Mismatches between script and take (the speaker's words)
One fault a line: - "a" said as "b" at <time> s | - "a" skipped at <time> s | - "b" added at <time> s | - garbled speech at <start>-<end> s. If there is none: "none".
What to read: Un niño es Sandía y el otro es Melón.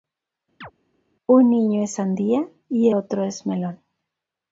- "el" skipped at 2.9 s